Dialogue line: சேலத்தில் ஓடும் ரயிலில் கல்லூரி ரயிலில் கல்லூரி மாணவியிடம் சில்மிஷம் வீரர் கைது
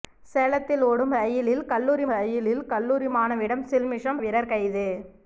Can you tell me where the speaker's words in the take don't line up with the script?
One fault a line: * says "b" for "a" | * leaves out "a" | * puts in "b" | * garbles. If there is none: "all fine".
all fine